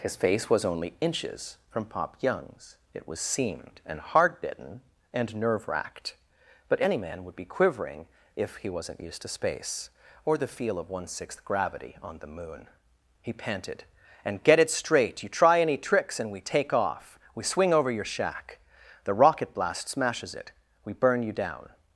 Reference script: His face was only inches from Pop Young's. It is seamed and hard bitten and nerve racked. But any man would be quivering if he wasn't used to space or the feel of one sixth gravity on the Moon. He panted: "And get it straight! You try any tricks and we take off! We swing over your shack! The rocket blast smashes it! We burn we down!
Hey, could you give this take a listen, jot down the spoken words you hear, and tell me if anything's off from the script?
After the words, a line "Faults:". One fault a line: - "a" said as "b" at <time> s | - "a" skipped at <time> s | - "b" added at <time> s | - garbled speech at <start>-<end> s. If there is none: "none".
His face was only inches from Pop Young's. It was seamed and hard bitten and nerve racked. But any man would be quivering if he wasn't used to space or the feel of one sixth gravity on the Moon. He panted: "And get it straight! You try any tricks and we take off! We swing over your shack! The rocket blast smashes it! We burn you down!
Faults:
- "is" said as "was" at 3.1 s
- "we" said as "you" at 21.2 s